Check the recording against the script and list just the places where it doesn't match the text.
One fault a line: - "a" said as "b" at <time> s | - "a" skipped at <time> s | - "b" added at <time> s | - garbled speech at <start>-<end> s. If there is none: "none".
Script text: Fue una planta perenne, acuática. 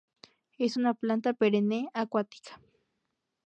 - "Fue" said as "Es" at 0.6 s